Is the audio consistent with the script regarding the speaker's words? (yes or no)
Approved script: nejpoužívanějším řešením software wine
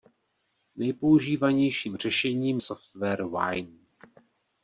yes